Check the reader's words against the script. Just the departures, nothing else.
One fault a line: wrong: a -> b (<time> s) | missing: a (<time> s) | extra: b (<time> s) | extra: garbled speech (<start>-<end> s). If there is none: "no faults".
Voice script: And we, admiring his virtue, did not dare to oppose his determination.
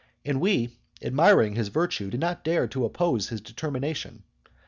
no faults